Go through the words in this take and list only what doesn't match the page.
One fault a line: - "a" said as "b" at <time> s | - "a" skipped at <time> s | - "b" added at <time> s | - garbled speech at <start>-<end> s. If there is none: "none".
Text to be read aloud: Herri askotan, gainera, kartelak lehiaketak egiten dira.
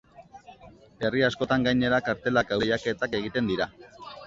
none